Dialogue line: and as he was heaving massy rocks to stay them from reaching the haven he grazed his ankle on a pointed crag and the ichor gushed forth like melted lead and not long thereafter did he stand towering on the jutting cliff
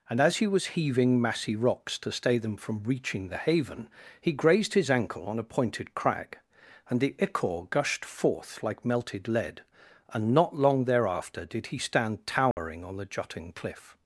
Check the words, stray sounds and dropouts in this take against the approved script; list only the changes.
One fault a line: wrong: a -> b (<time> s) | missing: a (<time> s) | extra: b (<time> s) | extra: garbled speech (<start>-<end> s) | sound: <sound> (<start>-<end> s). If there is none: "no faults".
sound: dropout (12.5-12.6 s)